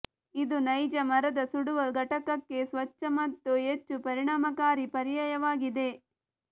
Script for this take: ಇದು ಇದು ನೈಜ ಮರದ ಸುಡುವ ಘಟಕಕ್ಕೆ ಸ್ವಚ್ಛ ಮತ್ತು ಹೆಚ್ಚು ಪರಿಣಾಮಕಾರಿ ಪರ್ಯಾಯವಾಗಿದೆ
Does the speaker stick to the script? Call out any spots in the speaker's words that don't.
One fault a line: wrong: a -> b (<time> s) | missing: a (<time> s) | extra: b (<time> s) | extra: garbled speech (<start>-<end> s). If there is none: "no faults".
missing: ಇದು (0.6 s)